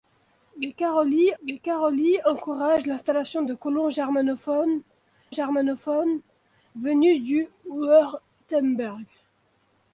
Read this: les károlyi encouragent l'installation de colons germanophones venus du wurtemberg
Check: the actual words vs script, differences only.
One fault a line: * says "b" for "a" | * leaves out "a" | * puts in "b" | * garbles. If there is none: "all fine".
* puts in "les károlyi"
* puts in "germanophones"